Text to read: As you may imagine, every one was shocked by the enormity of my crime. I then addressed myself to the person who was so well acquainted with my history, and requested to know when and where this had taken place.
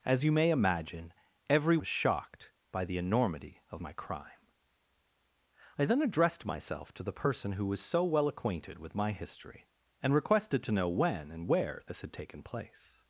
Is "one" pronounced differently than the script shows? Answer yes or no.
yes